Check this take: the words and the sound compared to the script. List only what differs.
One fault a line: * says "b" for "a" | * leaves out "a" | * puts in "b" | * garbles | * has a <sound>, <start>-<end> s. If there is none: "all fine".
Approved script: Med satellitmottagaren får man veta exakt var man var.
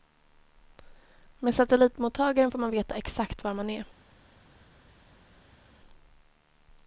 * says "är" for "var"